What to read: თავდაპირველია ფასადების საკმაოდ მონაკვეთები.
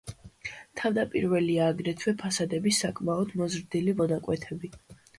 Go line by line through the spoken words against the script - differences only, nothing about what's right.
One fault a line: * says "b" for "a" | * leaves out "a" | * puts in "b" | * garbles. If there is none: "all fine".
* puts in "აგრეთვე"
* puts in "მოზრდილი"